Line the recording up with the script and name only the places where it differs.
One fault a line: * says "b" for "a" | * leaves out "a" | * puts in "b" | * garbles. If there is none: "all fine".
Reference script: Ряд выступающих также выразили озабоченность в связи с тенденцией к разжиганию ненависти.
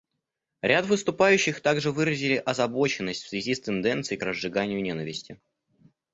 all fine